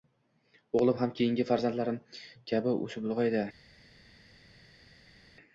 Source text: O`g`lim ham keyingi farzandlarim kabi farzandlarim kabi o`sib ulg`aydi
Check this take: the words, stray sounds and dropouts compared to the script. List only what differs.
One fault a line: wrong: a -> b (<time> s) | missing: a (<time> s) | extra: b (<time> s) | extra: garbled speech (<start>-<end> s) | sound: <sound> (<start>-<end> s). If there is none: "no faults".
missing: farzandlarim kabi (2.8 s)